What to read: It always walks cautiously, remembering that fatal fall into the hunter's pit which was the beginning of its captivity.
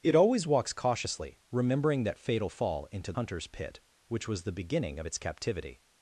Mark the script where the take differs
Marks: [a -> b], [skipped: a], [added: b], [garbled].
It always walks cautiously, remembering that fatal fall into [skipped: the] hunter's pit which was the beginning of its captivity.